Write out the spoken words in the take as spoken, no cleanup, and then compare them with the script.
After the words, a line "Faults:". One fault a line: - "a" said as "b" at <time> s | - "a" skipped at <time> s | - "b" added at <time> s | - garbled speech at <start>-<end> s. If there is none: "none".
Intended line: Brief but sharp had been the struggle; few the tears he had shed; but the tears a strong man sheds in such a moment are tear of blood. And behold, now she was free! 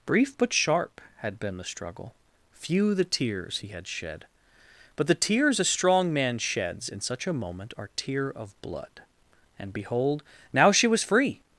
Brief but sharp had been the struggle; few the tears he had shed; but the tears a strong man sheds in such a moment are tear of blood. And behold, now she was free!
Faults:
none